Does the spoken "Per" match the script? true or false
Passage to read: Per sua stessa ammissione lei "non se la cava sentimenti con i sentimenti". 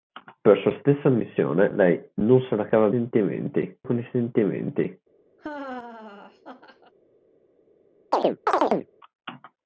true